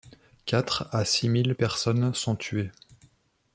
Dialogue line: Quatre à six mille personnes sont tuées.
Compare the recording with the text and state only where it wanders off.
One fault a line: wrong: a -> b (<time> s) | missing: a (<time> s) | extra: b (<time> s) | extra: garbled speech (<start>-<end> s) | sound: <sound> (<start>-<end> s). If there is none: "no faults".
no faults